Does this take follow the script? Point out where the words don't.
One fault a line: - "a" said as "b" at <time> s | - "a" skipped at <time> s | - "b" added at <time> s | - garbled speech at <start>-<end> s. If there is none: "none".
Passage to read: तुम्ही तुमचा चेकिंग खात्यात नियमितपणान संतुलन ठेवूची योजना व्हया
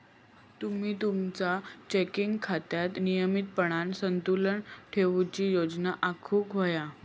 - "आखुक" added at 6.0 s